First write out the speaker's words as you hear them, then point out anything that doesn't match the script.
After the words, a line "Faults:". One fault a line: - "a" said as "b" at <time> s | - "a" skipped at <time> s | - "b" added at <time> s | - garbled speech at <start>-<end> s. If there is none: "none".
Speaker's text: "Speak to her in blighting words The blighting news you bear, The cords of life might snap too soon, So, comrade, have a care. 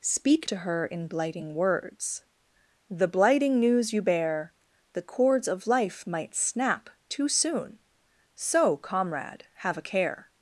"Speak to her in blighting words The blighting news you bear, The cords of life might snap too soon, So, comrade, have a care.
Faults:
none